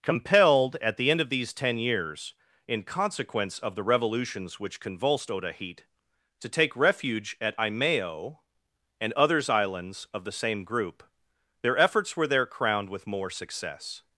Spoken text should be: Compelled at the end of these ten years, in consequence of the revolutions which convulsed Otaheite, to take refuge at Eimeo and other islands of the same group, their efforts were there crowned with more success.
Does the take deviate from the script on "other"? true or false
true